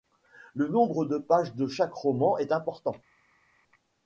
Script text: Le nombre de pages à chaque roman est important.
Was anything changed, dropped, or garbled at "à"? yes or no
yes